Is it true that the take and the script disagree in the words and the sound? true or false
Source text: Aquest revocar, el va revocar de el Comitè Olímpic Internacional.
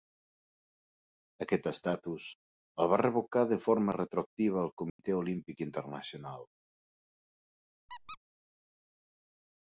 true